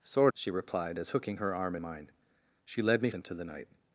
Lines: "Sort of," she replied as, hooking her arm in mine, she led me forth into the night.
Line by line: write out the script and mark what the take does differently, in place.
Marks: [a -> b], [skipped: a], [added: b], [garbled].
"Sort [skipped: of,"] she replied as, hooking her arm [skipped: in] mine, she led me [skipped: forth] into the night.